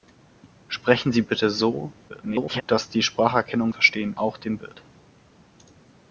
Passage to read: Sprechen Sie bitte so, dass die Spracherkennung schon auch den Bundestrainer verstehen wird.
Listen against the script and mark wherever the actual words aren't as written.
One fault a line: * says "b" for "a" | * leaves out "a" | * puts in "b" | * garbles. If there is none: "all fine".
* garbles
* says "verstehen" for "schon"
* leaves out "Bundestrainer verstehen"